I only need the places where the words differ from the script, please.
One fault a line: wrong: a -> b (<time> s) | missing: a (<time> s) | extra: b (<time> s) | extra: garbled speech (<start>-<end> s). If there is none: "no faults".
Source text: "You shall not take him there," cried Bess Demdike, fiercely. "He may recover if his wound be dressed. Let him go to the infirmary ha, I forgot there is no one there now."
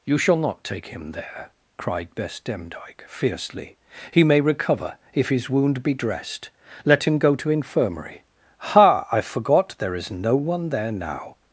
missing: the (7.5 s)